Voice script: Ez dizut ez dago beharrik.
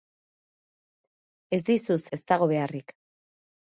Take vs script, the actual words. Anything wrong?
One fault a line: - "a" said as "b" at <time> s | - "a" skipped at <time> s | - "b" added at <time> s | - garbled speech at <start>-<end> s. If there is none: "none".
none